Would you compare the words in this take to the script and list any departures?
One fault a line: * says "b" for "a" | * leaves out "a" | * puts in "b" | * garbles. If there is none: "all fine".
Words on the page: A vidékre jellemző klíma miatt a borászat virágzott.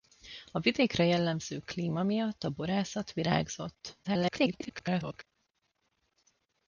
* garbles